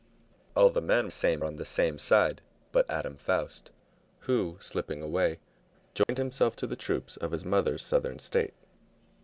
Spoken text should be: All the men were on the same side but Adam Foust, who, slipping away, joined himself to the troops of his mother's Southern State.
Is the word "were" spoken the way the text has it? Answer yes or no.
no